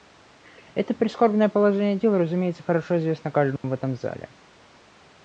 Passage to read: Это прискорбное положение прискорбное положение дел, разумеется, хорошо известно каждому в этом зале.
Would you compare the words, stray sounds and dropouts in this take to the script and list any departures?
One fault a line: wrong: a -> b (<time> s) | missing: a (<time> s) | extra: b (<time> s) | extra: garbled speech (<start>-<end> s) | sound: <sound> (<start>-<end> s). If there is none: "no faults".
missing: прискорбное положение (1.9 s)
sound: dropout (3.6-3.6 s)